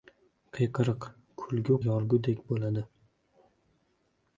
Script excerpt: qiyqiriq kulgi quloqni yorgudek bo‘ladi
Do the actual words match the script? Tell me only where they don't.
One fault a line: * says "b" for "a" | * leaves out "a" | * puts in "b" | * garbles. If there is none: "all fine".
* leaves out "quloqni"